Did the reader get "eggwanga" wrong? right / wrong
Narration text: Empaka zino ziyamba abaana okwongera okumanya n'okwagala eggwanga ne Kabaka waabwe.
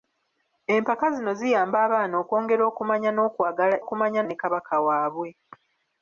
wrong